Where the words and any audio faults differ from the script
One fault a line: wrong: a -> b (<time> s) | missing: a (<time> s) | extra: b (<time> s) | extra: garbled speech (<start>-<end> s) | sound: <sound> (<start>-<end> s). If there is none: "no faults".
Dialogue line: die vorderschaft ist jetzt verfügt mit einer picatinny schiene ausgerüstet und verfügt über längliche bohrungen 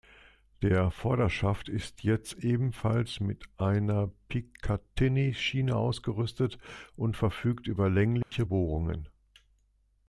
wrong: die -> der (0.6 s)
wrong: verfügt -> ebenfalls (2.3 s)
sound: dropout (8.2-8.3 s)